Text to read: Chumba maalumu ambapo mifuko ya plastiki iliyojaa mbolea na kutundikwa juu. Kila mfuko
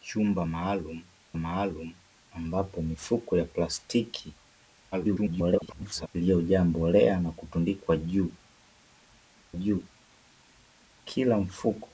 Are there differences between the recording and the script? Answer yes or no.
yes